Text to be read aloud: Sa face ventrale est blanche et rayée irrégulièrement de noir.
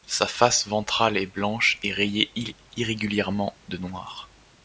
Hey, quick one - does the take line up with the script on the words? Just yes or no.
yes